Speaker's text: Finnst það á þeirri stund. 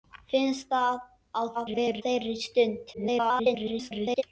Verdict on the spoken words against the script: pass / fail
fail